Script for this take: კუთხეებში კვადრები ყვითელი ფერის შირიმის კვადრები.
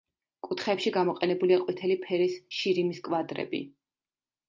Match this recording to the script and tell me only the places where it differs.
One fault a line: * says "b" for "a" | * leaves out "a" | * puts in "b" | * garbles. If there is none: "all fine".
* says "გამოყენებულია" for "კვადრები"